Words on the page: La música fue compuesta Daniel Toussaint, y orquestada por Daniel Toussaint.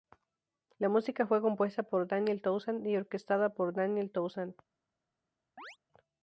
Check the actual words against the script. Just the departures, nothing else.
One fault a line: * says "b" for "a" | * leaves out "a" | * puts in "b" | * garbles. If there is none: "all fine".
* puts in "por"